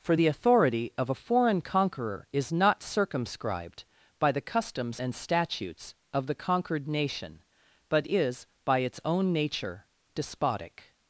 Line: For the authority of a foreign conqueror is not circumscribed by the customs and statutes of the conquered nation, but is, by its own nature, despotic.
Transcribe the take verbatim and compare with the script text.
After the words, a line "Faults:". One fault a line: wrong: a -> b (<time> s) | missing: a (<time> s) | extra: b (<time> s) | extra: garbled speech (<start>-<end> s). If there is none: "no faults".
For the authority of a foreign conqueror is not circumscribed by the customs and statutes of the conquered nation, but is, by its own nature, despotic.
Faults:
no faults